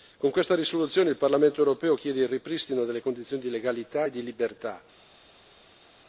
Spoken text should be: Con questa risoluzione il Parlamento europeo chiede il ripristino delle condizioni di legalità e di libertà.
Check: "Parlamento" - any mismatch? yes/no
no